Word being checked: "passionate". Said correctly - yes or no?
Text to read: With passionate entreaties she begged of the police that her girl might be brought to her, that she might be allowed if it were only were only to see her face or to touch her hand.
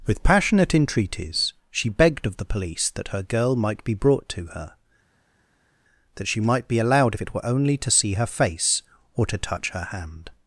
yes